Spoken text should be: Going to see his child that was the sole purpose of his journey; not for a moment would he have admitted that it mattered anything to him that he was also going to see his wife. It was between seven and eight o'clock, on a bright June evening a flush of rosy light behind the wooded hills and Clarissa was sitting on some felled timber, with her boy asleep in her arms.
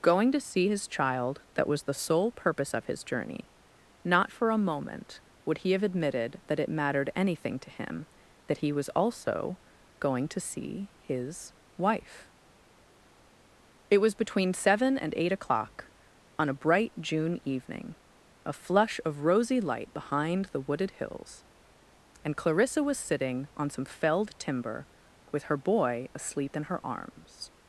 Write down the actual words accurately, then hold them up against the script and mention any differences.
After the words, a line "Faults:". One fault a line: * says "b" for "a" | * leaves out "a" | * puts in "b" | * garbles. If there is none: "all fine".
Going to see his child that was the sole purpose of his journey; not for a moment would he have admitted that it mattered anything to him that he was also going to see his wife. It was between seven and eight o'clock, on a bright June evening a flush of rosy light behind the wooded hills and Clarissa was sitting on some felled timber, with her boy asleep in her arms.
Faults:
all fine